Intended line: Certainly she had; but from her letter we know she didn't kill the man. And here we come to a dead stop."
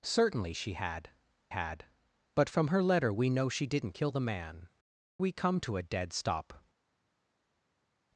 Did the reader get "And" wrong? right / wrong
wrong